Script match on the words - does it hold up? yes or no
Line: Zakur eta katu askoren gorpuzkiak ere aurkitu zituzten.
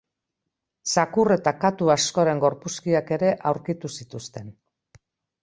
yes